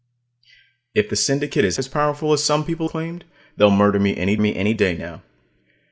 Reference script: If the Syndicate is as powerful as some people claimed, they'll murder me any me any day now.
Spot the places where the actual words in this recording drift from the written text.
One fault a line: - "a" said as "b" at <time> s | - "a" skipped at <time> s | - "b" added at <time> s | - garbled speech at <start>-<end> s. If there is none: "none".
none